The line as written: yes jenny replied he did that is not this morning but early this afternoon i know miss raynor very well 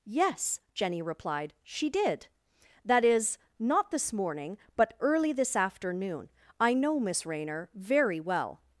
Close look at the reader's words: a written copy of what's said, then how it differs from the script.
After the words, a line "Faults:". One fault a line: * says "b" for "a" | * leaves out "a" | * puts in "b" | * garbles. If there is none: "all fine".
yes jenny replied she did that is not this morning but early this afternoon i know miss raynor very well
Faults:
* says "she" for "he"